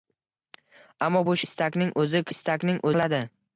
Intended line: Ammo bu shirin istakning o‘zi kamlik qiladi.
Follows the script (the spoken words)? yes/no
no